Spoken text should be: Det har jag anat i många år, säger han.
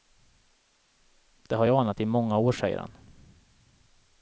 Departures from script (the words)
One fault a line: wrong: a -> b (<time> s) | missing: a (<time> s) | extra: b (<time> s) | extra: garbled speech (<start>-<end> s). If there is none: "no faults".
no faults